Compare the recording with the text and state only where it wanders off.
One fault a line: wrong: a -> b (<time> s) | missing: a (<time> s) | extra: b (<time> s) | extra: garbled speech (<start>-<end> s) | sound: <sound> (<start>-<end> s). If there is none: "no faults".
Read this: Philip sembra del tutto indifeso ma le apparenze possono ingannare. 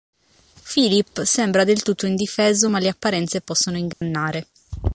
sound: dropout (3.9-4.0 s)